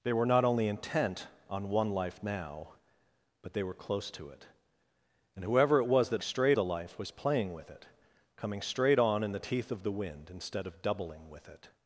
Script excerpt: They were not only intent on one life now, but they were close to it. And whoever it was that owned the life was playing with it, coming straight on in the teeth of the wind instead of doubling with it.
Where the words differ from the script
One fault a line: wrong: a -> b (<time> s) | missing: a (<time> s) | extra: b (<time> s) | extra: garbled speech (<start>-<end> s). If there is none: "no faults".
wrong: owned -> straight (6.2 s)